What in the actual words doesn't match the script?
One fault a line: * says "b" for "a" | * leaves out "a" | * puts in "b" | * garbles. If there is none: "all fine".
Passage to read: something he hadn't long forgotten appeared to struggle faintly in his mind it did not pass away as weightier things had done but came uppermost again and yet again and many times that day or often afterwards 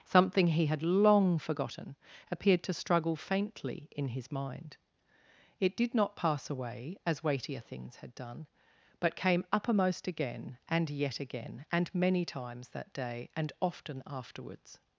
* says "had" for "hadn't"
* says "and" for "or"